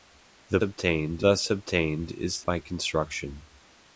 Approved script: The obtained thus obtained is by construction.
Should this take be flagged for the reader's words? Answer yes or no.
no